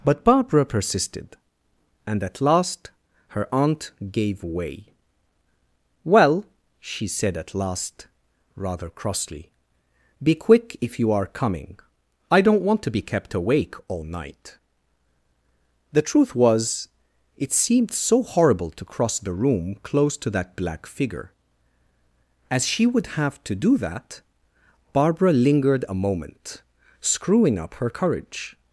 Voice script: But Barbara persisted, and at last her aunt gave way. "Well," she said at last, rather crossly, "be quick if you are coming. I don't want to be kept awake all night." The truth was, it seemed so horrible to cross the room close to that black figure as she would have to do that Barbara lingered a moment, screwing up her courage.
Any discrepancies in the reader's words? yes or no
no